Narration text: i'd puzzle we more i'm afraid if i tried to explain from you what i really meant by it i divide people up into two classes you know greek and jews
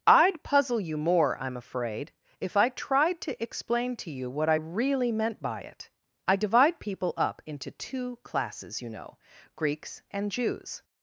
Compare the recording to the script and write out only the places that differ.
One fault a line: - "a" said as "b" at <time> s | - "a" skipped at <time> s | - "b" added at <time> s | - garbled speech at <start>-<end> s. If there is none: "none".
- "we" said as "you" at 0.8 s
- "from" said as "to" at 4.0 s
- "greek" said as "greeks" at 9.6 s